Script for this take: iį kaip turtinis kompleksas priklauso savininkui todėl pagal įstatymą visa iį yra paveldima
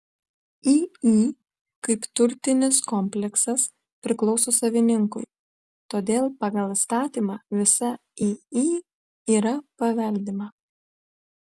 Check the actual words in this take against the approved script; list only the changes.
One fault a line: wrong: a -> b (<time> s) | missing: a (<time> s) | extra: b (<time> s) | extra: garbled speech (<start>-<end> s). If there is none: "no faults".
no faults